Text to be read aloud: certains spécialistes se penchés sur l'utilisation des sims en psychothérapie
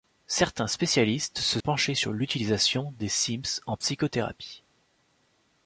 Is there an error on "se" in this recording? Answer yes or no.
no